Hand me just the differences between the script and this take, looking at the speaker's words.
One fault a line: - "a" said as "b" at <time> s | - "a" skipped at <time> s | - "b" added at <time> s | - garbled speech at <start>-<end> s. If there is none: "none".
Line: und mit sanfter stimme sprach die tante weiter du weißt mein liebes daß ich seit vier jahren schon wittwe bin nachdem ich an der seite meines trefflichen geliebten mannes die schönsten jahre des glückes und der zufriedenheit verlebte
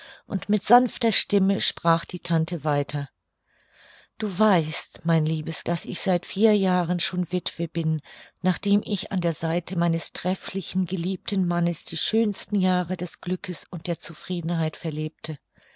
none